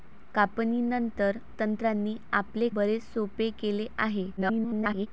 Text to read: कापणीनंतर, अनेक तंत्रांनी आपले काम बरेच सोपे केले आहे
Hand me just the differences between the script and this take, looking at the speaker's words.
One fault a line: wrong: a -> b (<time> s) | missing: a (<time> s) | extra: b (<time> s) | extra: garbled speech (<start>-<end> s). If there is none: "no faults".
missing: अनेक (1.4 s)
missing: काम (2.7 s)
extra: garbled speech (4.4-5.1 s)